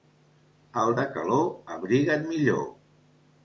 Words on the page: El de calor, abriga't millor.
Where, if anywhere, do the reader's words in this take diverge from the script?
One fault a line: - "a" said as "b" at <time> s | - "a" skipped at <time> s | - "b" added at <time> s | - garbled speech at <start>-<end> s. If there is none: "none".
none